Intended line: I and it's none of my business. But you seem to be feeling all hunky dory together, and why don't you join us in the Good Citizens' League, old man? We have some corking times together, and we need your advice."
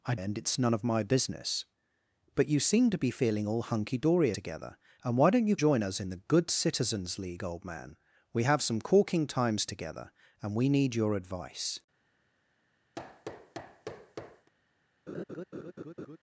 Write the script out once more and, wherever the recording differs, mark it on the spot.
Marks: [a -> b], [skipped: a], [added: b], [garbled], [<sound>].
I and it's none of my business. But you seem to be feeling all hunky dory together, and why don't you join us in the Good Citizens' League, old man? We have some corking times together, and we need your advice." [thud] [laugh]